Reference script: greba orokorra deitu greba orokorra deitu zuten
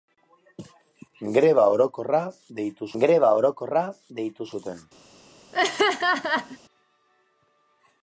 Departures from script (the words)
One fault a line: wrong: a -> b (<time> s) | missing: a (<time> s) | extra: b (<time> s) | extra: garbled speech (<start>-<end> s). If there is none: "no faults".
no faults